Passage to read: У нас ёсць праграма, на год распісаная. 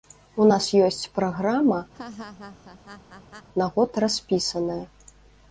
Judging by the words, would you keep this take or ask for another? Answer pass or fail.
pass